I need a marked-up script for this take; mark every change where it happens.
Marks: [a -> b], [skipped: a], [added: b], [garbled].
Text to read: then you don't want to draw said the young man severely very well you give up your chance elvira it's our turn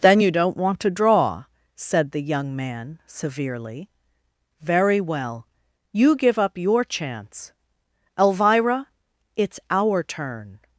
then you don't want to draw said the young man severely very well you give up your chance elvira it's our turn